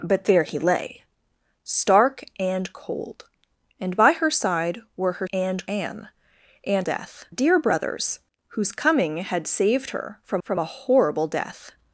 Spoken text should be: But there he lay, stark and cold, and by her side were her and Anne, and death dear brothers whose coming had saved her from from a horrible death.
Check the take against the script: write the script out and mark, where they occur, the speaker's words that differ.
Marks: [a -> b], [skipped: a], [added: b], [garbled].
But there he lay, stark and cold, and by her side were her and Anne, and death dear brothers whose coming had saved her from from a horrible death.